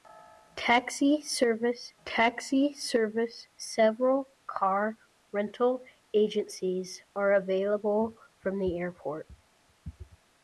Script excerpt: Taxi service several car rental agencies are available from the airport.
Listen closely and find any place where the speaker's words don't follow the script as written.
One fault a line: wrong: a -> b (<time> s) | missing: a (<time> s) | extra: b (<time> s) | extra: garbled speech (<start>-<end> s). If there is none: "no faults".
extra: taxi service (2.0 s)